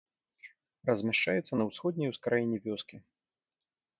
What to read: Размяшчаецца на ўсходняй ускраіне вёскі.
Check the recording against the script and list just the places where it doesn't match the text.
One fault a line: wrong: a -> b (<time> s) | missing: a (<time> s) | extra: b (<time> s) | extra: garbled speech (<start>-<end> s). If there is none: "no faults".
no faults